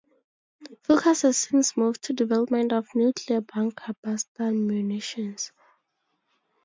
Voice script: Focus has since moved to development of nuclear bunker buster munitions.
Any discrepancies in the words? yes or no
no